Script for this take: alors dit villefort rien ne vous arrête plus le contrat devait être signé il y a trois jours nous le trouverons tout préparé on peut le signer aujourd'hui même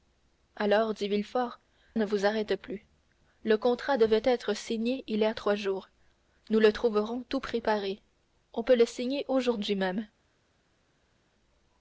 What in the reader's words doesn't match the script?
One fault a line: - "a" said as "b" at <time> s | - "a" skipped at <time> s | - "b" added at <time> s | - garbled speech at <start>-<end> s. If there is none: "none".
- "rien" skipped at 1.6 s